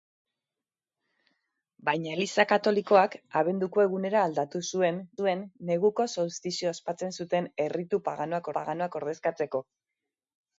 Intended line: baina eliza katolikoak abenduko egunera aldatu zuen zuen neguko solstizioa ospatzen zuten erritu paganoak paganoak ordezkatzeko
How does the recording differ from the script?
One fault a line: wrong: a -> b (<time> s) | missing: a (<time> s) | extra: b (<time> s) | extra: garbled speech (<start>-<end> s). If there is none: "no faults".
no faults